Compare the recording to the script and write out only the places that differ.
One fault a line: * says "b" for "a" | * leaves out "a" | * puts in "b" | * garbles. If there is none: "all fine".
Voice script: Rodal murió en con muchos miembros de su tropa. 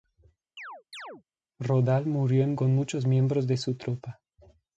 all fine